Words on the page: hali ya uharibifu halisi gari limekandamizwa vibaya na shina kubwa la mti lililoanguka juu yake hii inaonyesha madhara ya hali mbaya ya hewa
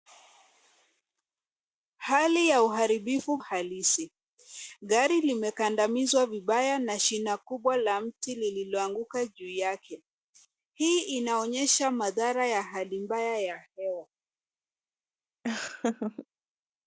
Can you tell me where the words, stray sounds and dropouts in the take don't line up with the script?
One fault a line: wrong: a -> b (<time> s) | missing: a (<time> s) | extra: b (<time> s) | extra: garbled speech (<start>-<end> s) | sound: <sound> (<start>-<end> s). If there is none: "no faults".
sound: laugh (15.4-16.3 s)